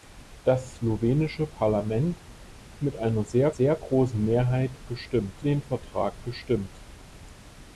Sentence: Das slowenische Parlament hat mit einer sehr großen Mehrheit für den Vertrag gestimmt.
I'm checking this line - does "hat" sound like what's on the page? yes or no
no